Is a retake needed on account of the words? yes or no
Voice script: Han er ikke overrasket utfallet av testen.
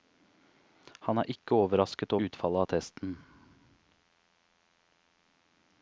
no